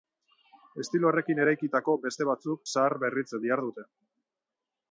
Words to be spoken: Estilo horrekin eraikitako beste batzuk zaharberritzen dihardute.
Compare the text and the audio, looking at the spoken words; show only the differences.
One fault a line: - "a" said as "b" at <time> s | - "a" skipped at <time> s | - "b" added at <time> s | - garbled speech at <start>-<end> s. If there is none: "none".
none